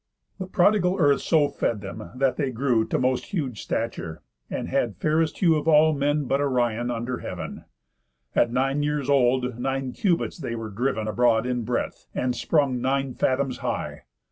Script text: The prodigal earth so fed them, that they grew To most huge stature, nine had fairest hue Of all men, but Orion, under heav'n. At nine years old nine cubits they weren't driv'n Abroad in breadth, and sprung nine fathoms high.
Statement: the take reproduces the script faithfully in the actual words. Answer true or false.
false